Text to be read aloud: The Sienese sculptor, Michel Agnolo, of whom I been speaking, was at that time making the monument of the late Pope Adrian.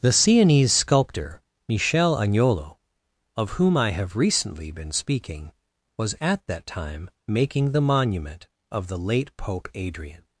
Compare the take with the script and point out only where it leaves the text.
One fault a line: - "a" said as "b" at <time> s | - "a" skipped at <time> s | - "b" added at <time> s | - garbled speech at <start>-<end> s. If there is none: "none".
- "have recently" added at 3.9 s